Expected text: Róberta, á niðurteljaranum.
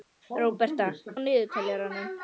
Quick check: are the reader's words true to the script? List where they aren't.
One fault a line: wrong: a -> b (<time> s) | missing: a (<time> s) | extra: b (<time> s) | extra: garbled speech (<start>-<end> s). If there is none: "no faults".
no faults